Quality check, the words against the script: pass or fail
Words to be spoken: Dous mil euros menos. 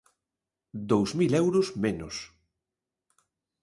pass